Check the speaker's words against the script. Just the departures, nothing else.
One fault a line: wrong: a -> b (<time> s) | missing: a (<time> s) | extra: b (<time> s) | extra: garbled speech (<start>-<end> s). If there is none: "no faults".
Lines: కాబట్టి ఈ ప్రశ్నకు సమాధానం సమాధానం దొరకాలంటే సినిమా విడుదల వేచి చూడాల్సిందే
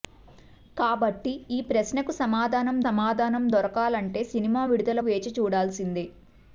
no faults